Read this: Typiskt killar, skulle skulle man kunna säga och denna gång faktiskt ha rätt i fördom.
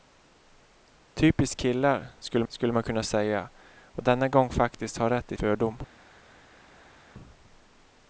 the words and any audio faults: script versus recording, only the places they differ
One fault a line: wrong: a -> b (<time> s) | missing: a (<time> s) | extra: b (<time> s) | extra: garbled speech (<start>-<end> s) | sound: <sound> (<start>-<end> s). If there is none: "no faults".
no faults